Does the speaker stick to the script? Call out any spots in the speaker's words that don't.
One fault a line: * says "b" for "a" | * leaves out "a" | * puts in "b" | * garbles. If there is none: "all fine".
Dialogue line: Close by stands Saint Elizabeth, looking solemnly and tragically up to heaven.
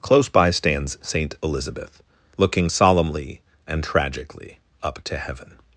all fine